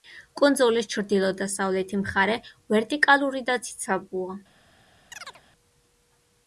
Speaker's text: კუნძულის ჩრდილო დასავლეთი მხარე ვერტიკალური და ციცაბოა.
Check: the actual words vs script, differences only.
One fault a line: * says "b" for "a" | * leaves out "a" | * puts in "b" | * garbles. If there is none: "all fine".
all fine